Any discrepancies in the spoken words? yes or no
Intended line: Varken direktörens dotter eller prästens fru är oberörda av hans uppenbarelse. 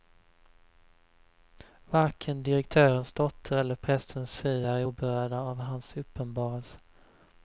no